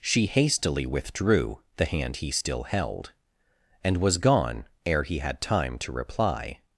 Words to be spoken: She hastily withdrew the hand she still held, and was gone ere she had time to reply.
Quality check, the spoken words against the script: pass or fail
fail